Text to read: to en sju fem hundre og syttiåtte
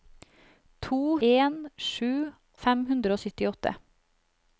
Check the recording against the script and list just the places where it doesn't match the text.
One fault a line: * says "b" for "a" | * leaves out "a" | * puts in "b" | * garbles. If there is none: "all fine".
all fine